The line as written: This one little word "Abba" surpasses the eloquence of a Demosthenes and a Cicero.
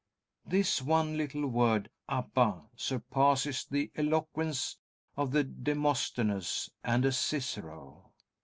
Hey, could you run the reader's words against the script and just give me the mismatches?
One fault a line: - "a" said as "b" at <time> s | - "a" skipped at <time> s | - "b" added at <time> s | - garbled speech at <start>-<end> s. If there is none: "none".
none